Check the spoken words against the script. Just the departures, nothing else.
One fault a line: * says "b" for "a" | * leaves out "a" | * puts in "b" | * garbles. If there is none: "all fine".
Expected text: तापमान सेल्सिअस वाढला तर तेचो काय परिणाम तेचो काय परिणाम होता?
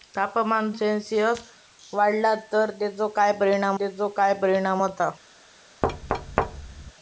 all fine